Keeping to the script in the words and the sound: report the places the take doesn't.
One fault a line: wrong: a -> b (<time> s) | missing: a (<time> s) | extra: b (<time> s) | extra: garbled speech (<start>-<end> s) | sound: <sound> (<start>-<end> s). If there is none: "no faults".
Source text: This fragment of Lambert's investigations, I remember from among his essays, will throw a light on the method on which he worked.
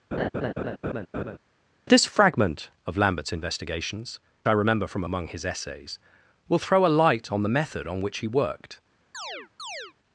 sound: laugh (0.1-1.4 s)
sound: chirp (9.1-9.9 s)